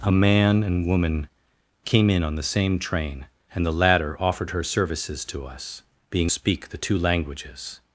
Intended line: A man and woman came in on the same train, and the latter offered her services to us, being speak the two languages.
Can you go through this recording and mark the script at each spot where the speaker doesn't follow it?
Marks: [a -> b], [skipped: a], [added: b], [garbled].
A man and woman came in on the same train, and the latter offered her services to us, being speak the two languages.